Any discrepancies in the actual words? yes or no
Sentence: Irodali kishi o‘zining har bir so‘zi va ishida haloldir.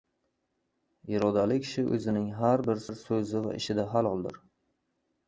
yes